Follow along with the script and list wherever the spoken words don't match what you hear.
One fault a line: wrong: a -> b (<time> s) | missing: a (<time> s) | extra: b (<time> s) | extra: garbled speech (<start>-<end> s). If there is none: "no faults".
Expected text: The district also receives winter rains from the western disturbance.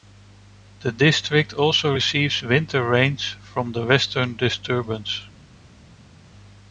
no faults